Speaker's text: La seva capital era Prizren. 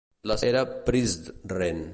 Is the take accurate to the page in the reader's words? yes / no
no